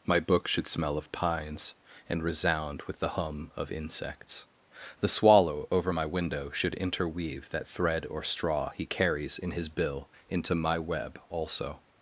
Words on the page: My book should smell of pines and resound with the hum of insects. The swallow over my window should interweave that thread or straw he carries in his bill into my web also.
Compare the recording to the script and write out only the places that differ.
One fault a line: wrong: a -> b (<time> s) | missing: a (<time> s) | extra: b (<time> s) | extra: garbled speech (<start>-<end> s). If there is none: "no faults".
no faults